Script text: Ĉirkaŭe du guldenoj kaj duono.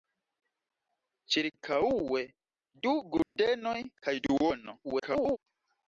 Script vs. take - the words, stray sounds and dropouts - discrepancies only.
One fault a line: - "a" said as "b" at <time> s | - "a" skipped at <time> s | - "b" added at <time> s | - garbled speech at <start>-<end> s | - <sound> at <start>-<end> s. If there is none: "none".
- dropout at 3.2-3.4 s
- garbled speech at 4.8-5.4 s